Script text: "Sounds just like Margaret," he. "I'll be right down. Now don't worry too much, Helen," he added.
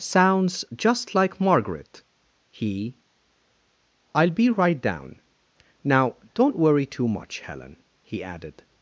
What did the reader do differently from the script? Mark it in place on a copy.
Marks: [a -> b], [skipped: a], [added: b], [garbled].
"Sounds just like Margaret," he. "I'll be right down. Now don't worry too much, Helen," he added.